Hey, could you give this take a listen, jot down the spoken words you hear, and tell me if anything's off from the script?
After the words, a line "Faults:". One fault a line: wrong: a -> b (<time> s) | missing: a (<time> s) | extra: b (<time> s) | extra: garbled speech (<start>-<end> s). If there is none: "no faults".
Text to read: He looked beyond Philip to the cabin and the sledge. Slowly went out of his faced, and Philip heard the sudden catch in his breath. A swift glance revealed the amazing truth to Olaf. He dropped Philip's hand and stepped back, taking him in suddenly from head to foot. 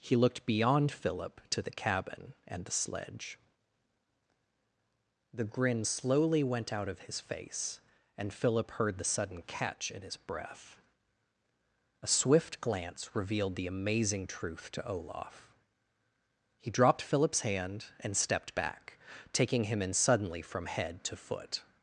He looked beyond Philip to the cabin and the sledge. The grin slowly went out of his face, and Philip heard the sudden catch in his breath. A swift glance revealed the amazing truth to Olaf. He dropped Philip's hand and stepped back, taking him in suddenly from head to foot.
Faults:
extra: The grin (5.3 s)
wrong: faced -> face (7.2 s)